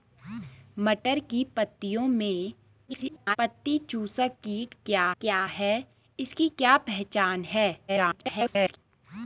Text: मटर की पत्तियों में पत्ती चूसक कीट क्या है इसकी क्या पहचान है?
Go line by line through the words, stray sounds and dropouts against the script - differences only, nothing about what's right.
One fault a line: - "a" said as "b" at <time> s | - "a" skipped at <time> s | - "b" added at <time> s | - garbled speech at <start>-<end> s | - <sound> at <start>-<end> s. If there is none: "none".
- garbled speech at 2.9-3.4 s
- "क्या" added at 5.2 s
- garbled speech at 7.9-8.8 s